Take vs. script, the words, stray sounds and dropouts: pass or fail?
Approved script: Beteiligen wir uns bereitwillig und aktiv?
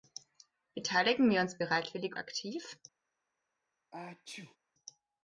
fail